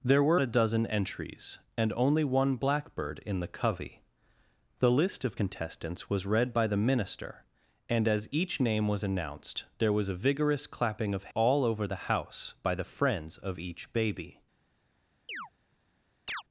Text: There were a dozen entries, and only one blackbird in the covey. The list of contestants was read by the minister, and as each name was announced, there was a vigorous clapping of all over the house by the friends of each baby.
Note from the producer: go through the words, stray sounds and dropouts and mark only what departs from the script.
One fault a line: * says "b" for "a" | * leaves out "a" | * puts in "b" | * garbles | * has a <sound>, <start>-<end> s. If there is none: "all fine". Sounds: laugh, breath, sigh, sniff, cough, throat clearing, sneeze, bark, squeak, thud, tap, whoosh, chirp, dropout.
* has a chirp, 15.3-15.5 s
* has a chirp, 16.3-16.4 s